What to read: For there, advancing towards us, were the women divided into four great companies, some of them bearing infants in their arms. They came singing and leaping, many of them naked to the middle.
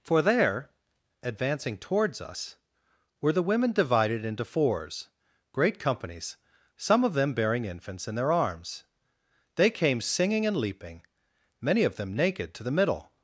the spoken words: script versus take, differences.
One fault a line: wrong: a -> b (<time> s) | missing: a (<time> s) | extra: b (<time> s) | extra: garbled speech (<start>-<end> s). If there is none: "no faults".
wrong: four -> fours (4.5 s)